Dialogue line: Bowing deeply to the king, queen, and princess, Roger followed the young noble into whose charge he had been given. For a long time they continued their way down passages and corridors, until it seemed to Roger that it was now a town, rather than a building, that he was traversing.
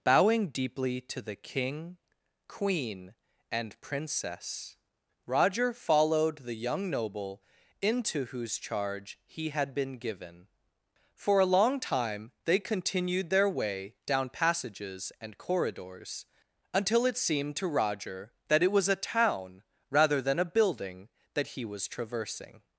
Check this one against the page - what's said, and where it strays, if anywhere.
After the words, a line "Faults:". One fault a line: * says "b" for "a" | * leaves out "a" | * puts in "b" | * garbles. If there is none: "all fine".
Bowing deeply to the king, queen, and princess, Roger followed the young noble into whose charge he had been given. For a long time they continued their way down passages and corridors, until it seemed to Roger that it was a town, rather than a building, that he was traversing.
Faults:
* leaves out "now"